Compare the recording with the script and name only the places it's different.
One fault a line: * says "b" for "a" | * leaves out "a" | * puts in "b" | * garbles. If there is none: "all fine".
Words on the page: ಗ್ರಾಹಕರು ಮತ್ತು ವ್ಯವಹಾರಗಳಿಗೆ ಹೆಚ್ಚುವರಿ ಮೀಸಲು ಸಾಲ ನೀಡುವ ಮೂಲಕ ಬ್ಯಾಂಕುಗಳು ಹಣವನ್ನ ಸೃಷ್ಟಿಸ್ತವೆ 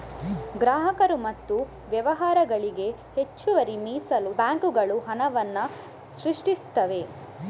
* leaves out "ಸಾಲ ನೀಡುವ ಮೂಲಕ"